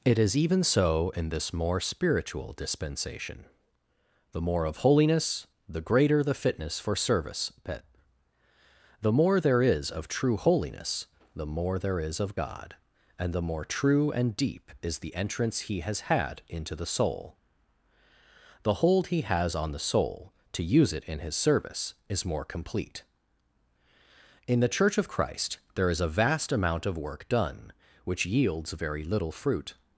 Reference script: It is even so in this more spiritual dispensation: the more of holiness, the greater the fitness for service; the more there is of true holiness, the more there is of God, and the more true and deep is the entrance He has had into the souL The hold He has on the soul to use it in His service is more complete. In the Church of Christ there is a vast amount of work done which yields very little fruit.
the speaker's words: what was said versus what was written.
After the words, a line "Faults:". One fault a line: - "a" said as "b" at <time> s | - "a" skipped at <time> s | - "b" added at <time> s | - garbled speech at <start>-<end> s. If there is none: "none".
It is even so in this more spiritual dispensation: the more of holiness, the greater the fitness for service; pet the more there is of true holiness, the more there is of God, and the more true and deep is the entrance He has had into the souL The hold He has on the soul to use it in His service is more complete. In the Church of Christ there is a vast amount of work done which yields very little fruit.
Faults:
- "pet" added at 7.6 s